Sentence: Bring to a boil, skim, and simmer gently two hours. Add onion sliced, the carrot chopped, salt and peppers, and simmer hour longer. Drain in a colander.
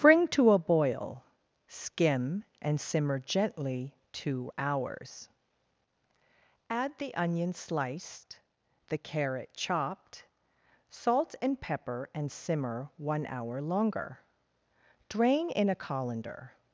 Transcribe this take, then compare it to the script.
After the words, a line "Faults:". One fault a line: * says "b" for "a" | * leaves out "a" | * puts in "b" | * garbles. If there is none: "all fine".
Bring to a boil, skim, and simmer gently two hours. Add the onion sliced, the carrot chopped, salt and pepper, and simmer one hour longer. Drain in a colander.
Faults:
* puts in "the"
* says "pepper" for "peppers"
* puts in "one"